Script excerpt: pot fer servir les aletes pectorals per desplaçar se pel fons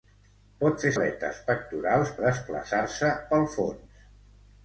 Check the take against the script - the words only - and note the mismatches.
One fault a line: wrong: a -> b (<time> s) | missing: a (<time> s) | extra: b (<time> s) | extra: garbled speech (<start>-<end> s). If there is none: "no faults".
missing: servir les (0.9 s)
missing: per (2.1 s)